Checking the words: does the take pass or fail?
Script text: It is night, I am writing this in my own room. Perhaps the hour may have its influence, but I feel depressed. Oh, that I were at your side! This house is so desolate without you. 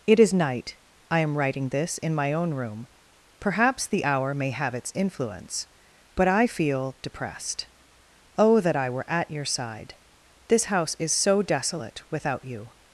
pass